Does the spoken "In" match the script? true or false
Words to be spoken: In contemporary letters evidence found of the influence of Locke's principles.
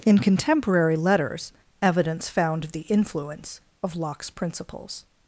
true